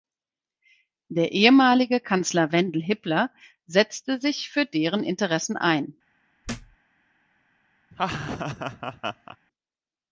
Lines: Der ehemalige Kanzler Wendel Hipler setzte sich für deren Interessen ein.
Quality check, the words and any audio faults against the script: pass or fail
fail